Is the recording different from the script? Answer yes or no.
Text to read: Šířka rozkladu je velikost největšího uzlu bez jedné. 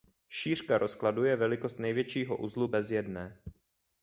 no